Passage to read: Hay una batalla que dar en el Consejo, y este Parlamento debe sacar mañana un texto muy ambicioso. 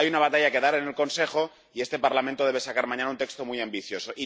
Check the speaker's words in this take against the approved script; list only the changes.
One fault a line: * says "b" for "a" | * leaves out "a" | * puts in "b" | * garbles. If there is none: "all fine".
all fine